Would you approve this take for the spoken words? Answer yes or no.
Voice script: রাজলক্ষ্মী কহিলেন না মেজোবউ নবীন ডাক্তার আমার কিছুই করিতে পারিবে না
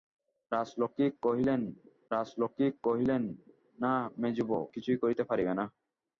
no